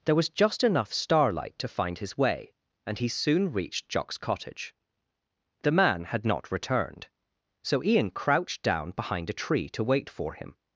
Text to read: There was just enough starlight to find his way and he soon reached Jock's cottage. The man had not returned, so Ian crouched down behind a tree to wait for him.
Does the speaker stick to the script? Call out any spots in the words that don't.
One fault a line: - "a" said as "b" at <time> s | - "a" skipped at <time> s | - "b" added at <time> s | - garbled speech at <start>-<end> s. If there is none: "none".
none